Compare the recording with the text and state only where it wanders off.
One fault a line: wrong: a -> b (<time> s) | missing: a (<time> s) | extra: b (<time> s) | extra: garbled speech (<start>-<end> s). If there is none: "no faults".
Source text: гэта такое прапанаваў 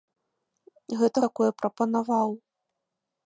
no faults